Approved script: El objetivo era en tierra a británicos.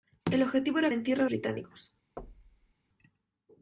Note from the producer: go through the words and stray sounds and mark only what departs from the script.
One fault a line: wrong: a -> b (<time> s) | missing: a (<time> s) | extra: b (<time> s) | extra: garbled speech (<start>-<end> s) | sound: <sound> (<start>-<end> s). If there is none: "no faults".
sound: thud (2.2-2.7 s)